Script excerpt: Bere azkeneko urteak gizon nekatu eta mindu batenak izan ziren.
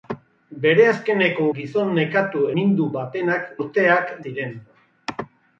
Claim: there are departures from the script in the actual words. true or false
true